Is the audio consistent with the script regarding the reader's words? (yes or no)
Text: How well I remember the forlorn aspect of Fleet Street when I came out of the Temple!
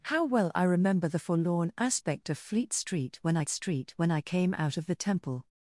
no